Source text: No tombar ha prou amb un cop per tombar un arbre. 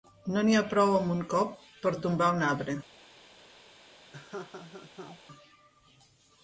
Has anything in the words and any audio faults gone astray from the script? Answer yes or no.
yes